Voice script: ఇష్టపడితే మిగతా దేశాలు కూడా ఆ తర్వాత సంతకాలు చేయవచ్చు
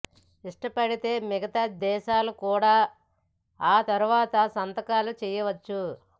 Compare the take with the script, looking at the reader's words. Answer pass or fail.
pass